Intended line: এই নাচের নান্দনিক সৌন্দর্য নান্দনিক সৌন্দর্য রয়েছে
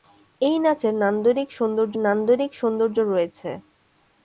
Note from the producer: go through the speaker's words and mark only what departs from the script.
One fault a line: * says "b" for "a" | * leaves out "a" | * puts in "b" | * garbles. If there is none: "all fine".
all fine